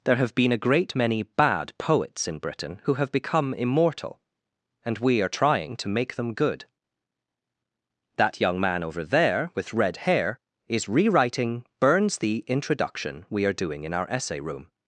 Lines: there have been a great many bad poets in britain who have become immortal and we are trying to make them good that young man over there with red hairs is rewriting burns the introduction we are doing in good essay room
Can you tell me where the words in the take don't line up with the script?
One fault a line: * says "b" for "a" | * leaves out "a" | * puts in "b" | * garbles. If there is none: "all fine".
* says "hair" for "hairs"
* says "our" for "good"